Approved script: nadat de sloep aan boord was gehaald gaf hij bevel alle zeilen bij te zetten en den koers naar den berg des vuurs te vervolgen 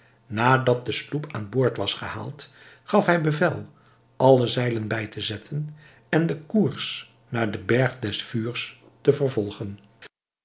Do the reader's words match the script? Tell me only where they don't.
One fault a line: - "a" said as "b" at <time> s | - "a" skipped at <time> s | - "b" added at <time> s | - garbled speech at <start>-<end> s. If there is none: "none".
none